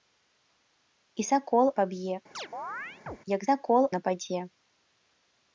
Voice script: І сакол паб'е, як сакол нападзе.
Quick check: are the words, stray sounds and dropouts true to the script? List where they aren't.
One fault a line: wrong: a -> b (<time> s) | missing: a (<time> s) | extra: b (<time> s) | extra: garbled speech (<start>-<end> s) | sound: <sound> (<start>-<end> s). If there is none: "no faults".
sound: chirp (2.3-3.2 s)